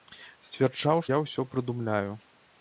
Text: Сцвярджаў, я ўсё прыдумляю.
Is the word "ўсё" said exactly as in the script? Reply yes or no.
yes